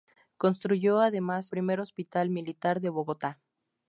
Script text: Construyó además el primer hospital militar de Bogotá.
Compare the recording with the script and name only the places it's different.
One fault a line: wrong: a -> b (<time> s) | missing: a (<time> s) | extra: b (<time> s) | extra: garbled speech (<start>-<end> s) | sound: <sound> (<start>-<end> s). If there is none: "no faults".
missing: el (1.5 s)